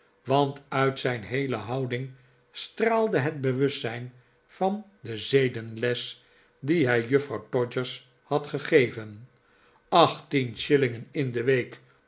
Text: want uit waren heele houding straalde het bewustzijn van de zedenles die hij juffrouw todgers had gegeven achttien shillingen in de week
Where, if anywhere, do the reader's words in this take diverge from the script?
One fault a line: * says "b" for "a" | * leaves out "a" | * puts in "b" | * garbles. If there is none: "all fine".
* says "zijn" for "waren"